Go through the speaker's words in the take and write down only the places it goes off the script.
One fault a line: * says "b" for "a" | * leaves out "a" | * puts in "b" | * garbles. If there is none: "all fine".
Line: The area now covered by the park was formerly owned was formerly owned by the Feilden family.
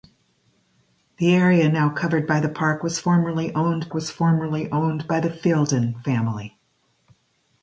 all fine